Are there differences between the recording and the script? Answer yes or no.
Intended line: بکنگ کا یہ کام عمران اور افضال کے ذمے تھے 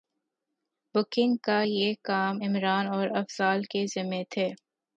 no